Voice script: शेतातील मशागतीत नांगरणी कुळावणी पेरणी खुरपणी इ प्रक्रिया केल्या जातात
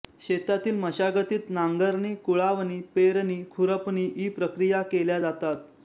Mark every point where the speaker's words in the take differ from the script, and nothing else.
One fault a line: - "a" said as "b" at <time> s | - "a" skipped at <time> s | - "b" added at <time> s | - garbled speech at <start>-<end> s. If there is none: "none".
none